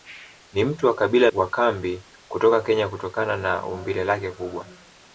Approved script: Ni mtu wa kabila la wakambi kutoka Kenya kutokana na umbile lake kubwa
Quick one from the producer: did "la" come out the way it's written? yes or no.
no